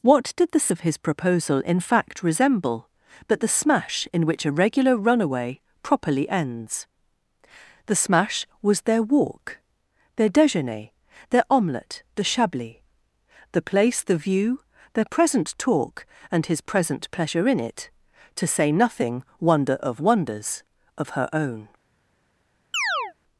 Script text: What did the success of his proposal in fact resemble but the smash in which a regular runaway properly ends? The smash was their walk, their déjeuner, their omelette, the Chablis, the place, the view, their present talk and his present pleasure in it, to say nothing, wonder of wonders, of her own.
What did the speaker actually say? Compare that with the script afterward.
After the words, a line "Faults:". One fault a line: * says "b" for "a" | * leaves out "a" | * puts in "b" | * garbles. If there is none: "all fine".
What did the of his proposal in fact resemble but the smash in which a regular runaway properly ends? The smash was their walk, their déjeuner, their omelette, the Chablis, the place, the view, their present talk and his present pleasure in it, to say nothing, wonder of wonders, of her own.
Faults:
* leaves out "success"